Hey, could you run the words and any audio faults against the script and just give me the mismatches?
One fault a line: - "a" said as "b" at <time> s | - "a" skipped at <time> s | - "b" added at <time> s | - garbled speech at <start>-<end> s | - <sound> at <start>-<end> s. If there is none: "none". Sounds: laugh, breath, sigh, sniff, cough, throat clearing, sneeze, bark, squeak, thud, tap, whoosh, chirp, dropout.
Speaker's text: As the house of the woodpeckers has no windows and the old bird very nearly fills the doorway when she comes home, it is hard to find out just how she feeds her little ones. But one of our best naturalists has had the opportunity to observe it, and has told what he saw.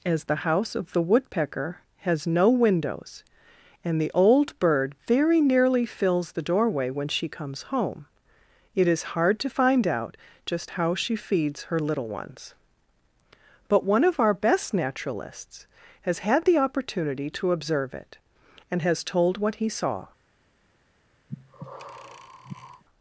- "woodpeckers" said as "woodpecker" at 1.0 s
- breath at 21.3-22.8 s